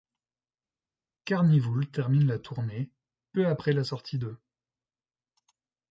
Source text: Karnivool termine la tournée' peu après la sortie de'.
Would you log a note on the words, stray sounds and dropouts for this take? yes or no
no